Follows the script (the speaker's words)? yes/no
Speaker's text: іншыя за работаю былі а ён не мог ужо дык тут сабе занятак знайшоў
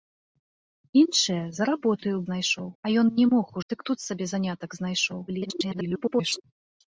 no